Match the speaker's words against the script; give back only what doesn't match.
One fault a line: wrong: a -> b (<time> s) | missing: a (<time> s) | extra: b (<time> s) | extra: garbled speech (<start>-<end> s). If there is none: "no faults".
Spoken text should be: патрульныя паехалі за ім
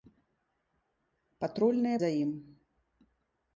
missing: паехалі (2.0 s)